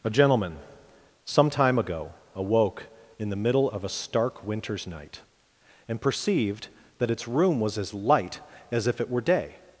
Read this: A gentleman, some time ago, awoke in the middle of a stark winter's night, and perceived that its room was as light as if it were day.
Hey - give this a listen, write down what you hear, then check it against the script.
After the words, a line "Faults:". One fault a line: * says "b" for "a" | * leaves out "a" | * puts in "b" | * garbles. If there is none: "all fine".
A gentleman, some time ago, awoke in the middle of a stark winter's night, and perceived that its room was as light as if it were day.
Faults:
all fine